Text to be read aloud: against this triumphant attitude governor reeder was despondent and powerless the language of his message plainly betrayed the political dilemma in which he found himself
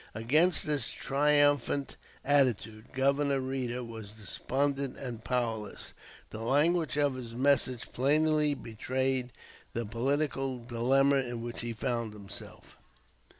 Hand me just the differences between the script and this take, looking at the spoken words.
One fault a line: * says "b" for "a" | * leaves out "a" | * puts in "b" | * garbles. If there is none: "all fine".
all fine